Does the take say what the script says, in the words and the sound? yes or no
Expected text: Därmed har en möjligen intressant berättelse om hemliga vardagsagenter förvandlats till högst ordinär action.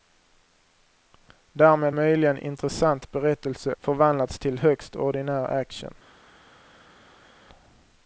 no